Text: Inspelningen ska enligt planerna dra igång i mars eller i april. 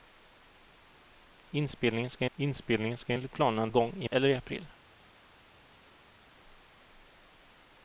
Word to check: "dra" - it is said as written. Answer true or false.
false